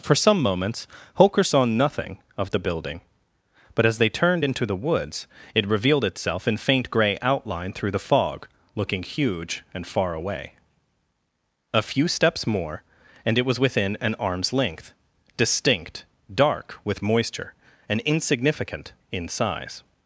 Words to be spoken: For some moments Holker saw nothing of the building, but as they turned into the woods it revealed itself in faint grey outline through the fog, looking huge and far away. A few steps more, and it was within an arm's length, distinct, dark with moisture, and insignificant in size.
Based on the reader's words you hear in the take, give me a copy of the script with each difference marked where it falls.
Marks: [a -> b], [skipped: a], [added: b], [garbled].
For some moments Holker saw nothing of the building, but as they turned into the woods it revealed itself in faint grey outline through the fog, looking huge and far away. A few steps more, and it was within an arm's length, distinct, dark with moisture, and insignificant in size.